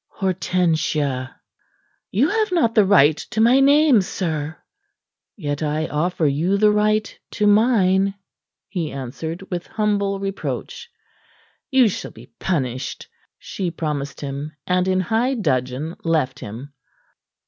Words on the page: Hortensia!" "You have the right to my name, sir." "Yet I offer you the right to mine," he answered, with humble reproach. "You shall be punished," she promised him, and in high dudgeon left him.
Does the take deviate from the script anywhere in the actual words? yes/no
yes